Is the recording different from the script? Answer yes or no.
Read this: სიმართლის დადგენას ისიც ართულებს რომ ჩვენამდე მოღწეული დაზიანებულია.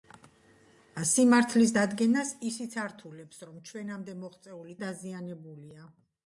no